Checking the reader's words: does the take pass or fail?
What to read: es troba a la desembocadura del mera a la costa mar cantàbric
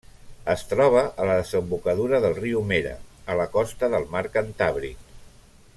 fail